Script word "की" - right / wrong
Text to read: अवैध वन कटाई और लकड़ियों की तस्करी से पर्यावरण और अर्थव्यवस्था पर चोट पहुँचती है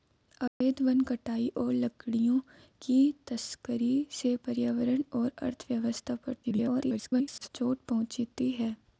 right